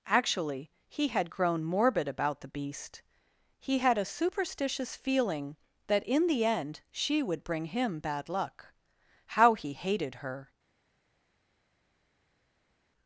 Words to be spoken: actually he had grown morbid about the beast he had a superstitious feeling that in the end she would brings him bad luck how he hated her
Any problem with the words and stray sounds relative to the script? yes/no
yes